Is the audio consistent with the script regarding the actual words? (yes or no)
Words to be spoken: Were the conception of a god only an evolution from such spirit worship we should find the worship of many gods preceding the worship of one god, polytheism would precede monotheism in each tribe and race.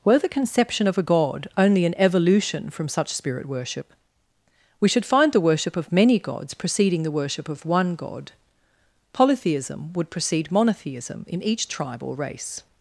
no